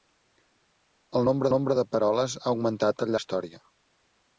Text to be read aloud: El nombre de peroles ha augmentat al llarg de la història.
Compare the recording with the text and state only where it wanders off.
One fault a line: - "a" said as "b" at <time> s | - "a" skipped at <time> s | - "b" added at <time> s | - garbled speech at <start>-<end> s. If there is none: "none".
- "nombre" added at 1.5 s
- "llarg de" skipped at 3.2 s